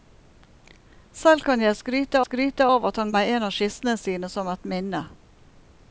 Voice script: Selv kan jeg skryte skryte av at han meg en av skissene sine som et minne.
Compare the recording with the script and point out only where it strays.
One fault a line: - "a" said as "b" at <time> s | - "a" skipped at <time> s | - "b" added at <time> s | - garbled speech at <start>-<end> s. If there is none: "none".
none